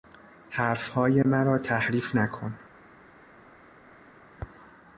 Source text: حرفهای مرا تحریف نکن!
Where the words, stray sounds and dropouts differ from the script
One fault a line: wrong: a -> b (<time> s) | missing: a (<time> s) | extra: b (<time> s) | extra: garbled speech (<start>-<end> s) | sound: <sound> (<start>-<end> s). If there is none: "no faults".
no faults